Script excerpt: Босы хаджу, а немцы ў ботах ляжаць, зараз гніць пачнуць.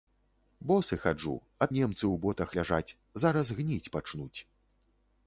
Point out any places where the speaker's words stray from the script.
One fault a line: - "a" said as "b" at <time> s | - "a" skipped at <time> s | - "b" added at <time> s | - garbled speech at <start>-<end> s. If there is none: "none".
none